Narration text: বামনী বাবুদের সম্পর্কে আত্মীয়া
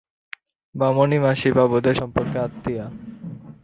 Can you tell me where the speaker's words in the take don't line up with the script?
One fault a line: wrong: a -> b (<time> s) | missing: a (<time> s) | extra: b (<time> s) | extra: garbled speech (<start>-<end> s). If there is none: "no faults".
extra: মাসি (1.2 s)